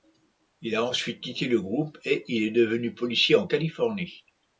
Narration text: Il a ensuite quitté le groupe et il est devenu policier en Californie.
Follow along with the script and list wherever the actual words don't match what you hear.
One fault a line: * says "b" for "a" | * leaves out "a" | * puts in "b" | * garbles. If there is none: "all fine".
all fine